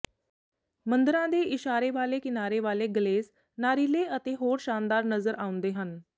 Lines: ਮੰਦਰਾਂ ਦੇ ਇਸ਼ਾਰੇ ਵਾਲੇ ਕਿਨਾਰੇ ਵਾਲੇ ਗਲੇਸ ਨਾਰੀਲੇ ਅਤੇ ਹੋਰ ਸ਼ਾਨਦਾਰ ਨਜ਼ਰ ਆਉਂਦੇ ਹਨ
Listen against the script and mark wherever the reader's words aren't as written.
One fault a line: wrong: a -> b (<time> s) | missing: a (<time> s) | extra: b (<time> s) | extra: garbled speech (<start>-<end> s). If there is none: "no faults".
no faults